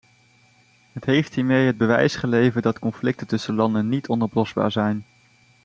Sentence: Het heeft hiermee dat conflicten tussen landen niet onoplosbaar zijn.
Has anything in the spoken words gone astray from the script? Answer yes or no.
yes